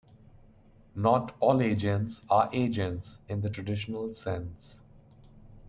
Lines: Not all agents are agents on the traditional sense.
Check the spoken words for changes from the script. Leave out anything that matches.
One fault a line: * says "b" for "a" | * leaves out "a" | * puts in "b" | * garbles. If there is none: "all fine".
* says "in" for "on"